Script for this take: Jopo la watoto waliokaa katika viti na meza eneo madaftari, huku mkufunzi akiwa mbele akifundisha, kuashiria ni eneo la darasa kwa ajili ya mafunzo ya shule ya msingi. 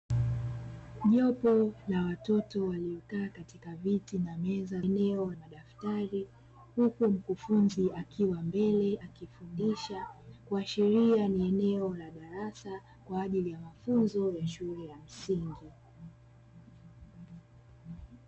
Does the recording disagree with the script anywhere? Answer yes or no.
no